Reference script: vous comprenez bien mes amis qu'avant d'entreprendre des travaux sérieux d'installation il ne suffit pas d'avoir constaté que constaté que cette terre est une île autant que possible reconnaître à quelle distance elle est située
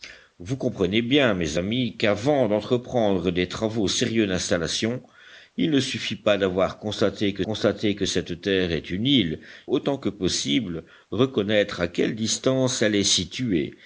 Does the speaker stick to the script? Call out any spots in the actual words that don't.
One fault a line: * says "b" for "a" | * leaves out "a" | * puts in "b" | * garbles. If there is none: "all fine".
all fine